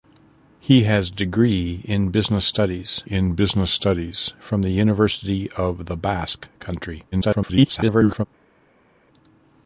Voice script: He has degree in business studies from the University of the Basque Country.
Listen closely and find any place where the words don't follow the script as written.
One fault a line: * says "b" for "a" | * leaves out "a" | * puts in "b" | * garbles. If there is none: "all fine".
* puts in "in business studies"
* garbles